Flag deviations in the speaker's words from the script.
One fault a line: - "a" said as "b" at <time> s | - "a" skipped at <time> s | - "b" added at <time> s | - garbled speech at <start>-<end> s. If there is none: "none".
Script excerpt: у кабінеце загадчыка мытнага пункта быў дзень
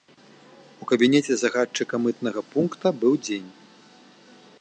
none